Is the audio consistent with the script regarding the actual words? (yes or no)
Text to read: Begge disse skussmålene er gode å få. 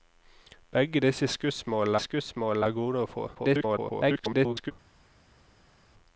no